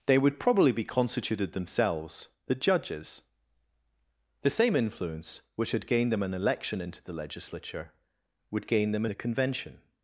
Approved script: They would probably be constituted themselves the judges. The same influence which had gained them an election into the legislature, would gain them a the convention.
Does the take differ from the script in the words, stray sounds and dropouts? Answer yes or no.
no